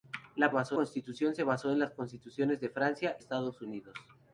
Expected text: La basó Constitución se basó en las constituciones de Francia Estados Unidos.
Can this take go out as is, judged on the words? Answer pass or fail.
pass